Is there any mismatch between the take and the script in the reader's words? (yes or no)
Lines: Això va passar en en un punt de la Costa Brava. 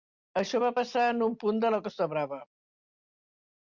yes